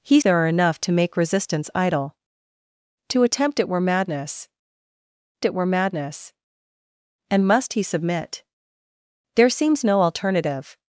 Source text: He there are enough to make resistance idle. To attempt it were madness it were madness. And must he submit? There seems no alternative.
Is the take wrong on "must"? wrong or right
right